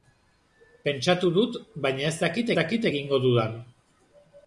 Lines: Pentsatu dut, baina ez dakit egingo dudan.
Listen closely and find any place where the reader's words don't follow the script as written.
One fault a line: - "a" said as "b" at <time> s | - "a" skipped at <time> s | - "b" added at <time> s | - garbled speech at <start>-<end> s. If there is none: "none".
- "dakit" added at 2.6 s